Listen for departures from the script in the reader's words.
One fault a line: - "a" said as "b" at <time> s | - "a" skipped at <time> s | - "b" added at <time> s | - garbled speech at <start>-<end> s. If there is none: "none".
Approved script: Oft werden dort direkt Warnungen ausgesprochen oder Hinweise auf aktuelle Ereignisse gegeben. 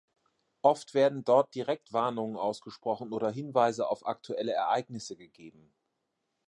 none